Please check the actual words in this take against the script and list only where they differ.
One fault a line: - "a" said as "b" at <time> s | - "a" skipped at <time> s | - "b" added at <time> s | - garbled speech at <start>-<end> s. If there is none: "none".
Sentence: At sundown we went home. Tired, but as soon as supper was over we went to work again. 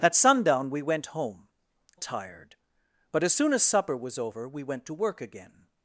none